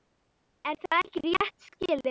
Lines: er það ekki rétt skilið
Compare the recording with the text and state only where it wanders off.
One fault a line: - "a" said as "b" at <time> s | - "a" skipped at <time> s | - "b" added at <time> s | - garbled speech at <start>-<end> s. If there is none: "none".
none